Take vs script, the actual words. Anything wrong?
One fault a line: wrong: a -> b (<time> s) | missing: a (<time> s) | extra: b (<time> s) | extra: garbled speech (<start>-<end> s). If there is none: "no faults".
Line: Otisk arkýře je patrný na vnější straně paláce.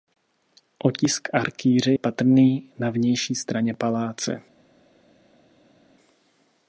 missing: je (1.9 s)